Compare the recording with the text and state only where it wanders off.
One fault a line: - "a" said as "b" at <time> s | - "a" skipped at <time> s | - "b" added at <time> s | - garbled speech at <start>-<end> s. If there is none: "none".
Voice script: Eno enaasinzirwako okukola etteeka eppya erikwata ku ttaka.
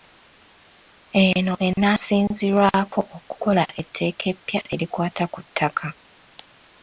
none